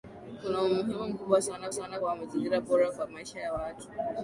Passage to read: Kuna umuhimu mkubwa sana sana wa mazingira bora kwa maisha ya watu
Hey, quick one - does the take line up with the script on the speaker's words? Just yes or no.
yes